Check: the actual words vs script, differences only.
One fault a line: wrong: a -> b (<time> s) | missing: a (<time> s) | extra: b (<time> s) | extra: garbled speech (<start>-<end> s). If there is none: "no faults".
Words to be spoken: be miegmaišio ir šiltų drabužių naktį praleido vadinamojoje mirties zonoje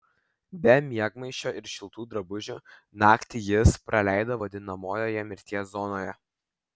extra: jis (3.5 s)